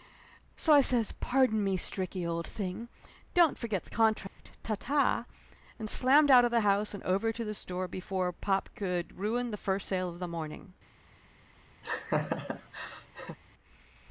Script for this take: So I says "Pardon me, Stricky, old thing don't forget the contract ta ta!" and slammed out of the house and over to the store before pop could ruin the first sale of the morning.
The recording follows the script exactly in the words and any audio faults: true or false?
false